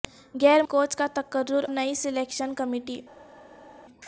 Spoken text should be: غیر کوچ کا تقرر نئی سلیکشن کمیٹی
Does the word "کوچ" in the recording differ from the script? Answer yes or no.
no